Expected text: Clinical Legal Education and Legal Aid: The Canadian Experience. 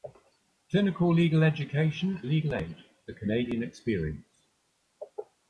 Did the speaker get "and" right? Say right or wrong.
wrong